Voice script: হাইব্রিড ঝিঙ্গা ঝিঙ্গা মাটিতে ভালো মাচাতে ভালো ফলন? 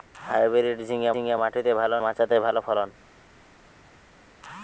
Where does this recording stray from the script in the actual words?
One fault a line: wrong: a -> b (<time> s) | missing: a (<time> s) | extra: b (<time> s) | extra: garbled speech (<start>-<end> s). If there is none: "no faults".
no faults